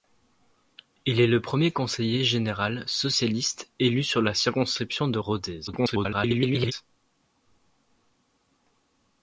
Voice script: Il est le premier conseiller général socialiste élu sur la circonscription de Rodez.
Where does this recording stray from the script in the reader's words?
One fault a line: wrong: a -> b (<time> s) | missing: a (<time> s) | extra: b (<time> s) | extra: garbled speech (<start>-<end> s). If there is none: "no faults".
extra: garbled speech (5.7-6.7 s)